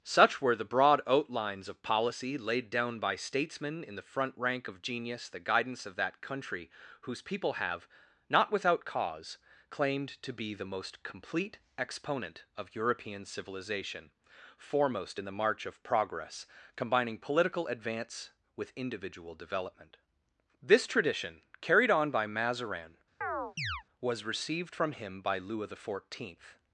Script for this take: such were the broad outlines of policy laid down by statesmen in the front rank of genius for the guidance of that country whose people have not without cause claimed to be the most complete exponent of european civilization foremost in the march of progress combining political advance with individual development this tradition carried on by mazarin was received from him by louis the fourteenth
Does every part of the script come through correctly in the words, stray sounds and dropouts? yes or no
no